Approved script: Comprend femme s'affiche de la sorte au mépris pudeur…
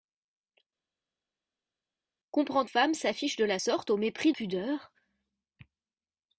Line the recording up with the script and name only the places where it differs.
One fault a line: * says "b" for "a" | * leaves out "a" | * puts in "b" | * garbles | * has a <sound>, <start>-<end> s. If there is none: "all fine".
all fine